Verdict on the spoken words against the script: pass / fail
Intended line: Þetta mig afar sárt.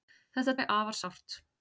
pass